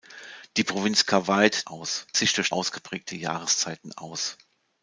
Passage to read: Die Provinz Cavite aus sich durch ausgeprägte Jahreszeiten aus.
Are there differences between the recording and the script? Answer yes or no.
no